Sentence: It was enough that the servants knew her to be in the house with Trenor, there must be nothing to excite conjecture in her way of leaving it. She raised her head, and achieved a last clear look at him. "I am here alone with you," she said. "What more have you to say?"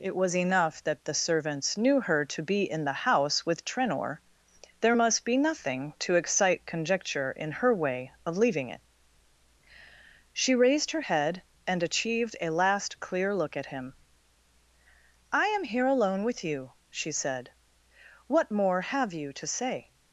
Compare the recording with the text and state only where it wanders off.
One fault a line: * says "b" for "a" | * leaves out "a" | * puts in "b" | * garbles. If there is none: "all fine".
all fine